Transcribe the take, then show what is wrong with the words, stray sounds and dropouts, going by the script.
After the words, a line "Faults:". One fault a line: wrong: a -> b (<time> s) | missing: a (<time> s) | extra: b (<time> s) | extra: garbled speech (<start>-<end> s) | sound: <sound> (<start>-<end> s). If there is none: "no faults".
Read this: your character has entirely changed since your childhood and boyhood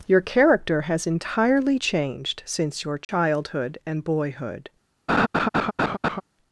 your character has entirely changed since your childhood and boyhood
Faults:
sound: dropout (3.0-3.1 s)
sound: laugh (5.1-6.2 s)